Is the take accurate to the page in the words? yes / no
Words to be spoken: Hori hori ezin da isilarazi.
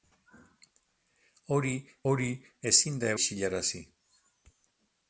yes